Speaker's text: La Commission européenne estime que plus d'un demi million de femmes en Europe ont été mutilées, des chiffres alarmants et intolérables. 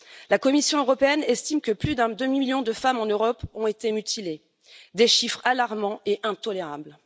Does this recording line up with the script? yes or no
yes